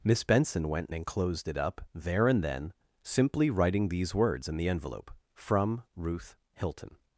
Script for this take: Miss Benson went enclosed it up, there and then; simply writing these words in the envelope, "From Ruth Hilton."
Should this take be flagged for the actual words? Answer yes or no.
no